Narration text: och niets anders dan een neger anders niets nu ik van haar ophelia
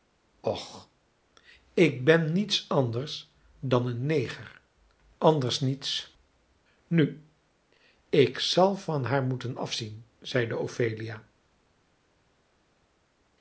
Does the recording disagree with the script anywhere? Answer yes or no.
yes